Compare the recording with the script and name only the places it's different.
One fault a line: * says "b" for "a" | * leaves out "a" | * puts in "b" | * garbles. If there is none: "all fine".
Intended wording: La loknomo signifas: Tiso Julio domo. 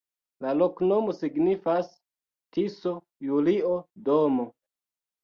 all fine